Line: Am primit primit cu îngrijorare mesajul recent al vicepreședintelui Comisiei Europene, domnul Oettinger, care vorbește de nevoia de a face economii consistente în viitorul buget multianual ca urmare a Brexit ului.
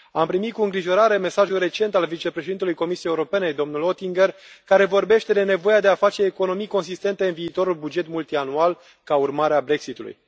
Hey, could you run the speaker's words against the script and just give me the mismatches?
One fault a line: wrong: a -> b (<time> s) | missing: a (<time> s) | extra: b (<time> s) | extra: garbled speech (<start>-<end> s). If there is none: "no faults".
missing: primit (0.5 s)